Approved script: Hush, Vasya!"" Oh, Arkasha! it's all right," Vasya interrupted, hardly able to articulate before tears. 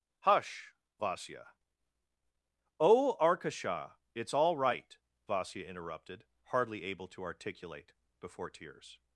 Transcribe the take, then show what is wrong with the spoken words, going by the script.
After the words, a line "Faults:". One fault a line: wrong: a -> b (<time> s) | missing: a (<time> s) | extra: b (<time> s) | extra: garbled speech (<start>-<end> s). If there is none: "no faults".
Hush, Vasya!"" Oh, Arkasha! it's all right," Vasya interrupted, hardly able to articulate before tears.
Faults:
no faults